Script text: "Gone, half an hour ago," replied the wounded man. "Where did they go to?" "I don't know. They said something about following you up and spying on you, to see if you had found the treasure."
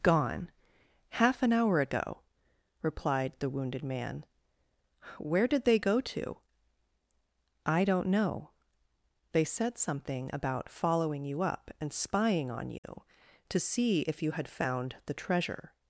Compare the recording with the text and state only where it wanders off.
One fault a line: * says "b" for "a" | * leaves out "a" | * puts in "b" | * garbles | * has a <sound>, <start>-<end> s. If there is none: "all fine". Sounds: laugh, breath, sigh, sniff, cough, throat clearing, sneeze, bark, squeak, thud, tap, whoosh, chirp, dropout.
* has a dropout, 12.8-12.8 s